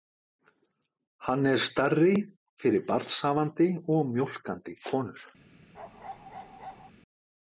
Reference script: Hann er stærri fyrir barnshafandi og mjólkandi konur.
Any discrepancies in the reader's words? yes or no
no